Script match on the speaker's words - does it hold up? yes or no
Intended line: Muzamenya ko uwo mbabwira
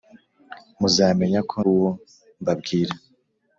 yes